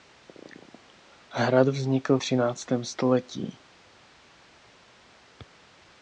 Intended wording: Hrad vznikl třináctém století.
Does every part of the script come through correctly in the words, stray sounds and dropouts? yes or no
yes